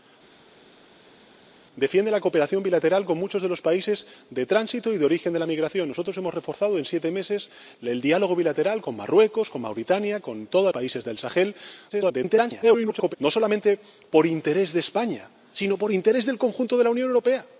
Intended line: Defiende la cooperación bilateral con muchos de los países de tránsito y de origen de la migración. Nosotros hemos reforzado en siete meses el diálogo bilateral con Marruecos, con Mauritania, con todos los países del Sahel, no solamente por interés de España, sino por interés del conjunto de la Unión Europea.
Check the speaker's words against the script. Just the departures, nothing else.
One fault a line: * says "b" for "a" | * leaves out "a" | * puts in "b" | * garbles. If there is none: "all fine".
* leaves out "los"
* garbles